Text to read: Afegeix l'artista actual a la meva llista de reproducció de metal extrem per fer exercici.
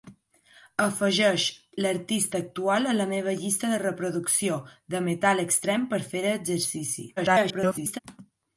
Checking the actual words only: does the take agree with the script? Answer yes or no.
no